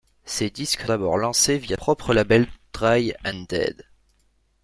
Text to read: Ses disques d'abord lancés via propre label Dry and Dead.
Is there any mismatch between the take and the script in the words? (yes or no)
no